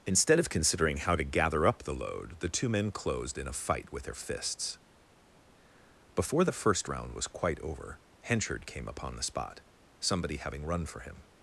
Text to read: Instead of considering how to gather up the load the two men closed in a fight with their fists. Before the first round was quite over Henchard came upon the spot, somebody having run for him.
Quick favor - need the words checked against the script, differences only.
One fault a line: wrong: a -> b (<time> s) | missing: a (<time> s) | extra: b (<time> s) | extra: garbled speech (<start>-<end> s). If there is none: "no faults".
no faults